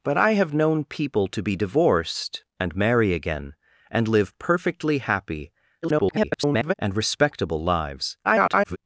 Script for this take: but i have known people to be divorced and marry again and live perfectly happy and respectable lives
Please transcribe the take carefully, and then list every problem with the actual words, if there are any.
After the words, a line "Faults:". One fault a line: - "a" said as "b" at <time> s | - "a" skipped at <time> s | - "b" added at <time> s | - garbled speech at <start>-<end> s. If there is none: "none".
but i have known people to be divorced and marry again and live perfectly happy [garbled] and respectable lives [garbled]
Faults:
- garbled speech at 5.8-6.7 s
- garbled speech at 8.2-8.8 s